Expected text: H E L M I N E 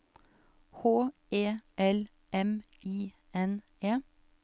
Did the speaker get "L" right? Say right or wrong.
right